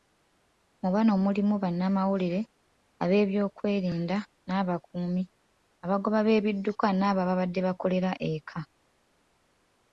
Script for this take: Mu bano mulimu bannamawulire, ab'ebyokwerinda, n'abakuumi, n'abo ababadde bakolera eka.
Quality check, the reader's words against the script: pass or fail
fail